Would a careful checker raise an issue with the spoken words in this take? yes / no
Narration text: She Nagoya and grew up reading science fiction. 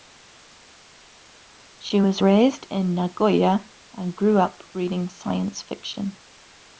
yes